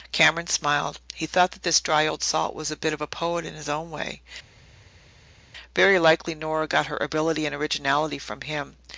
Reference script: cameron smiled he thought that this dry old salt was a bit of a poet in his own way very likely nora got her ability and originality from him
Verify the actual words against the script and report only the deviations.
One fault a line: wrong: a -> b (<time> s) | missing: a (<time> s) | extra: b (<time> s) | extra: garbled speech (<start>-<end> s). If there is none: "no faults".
no faults